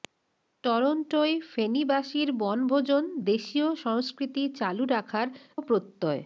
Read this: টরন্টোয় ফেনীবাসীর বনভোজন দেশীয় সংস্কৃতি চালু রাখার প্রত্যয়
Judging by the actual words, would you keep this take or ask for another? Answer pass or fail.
pass